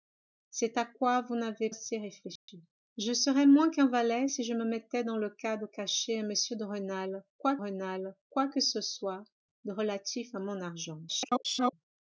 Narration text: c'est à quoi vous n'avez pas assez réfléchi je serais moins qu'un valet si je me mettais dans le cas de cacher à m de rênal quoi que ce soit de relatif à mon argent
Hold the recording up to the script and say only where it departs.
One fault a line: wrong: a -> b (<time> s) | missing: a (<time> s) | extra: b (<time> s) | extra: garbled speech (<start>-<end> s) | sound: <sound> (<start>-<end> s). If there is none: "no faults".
missing: pas (1.7 s)
sound: dropout (2.4-2.5 s)
extra: rênal quoi (7.5 s)
extra: garbled speech (11.1-11.7 s)